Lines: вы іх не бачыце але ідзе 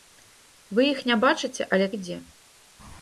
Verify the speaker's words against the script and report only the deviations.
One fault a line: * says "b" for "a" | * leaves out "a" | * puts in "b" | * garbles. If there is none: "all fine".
all fine